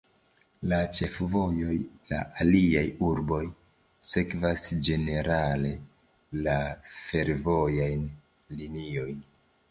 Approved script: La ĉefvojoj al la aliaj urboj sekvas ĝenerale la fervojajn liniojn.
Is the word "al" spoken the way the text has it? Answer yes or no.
no